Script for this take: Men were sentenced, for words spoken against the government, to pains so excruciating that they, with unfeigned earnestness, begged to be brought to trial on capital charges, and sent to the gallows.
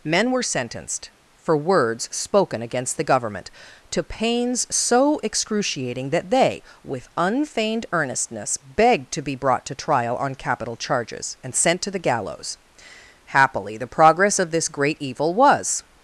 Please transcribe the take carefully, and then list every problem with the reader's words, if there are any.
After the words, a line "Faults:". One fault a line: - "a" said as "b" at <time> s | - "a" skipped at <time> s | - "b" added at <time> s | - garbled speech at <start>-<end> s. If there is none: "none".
Men were sentenced, for words spoken against the government, to pains so excruciating that they, with unfeigned earnestness, begged to be brought to trial on capital charges, and sent to the gallows. Happily the progress of this great evil was
Faults:
- "Happily the progress of this great evil was" added at 13.3 s